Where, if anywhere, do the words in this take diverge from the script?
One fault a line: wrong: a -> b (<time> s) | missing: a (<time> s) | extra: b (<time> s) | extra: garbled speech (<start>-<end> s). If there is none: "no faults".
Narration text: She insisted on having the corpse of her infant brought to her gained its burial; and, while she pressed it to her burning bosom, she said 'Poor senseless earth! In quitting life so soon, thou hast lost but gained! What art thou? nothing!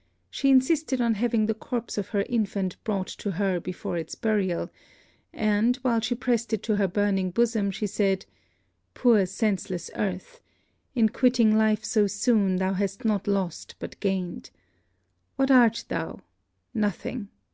wrong: gained -> before (3.6 s)
extra: not (13.0 s)